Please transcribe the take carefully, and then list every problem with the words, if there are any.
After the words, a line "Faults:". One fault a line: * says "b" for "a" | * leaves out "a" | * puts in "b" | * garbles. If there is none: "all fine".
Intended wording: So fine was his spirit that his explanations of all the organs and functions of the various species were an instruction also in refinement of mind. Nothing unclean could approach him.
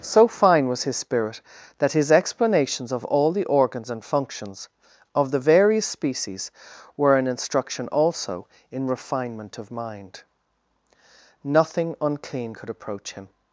So fine was his spirit that his explanations of all the organs and functions of the various species were an instruction also in refinement of mind. Nothing unclean could approach him.
Faults:
all fine